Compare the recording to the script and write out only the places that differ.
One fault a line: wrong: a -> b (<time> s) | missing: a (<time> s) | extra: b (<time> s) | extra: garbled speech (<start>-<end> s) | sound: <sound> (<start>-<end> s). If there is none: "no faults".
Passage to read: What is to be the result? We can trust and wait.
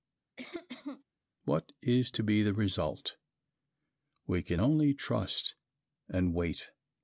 sound: cough (0.4-1.0 s)
extra: only (4.6 s)